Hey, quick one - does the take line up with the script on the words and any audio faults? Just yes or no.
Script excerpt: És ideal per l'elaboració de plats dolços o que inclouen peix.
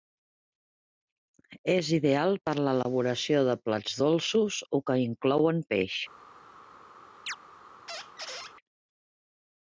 no